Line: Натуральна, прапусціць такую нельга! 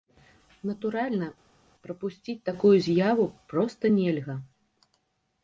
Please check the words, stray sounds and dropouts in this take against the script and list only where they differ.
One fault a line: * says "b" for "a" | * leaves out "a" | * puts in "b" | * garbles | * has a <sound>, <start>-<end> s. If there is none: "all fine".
* puts in "з'яву проста"